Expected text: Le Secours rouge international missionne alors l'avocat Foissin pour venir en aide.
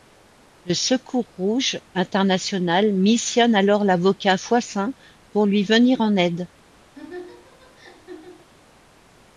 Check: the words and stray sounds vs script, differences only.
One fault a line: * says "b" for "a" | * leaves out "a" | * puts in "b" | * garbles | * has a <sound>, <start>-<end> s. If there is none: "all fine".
* puts in "lui"
* has a laugh, 6.9-8.5 s